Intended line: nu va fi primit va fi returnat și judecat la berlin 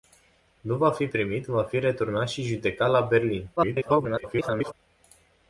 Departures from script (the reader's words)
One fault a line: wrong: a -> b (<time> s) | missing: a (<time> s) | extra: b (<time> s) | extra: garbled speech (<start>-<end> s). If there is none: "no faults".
extra: garbled speech (3.6-4.7 s)